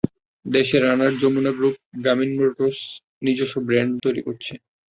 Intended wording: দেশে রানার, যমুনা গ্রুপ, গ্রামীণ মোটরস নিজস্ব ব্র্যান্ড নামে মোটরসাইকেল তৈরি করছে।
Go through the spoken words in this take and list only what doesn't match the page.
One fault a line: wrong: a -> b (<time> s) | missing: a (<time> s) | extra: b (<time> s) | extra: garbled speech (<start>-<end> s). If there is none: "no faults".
missing: নামে মোটরসাইকেল (3.9 s)